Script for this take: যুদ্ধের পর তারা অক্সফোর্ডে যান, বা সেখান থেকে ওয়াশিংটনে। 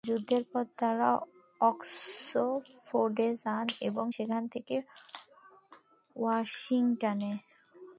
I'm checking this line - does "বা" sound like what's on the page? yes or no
no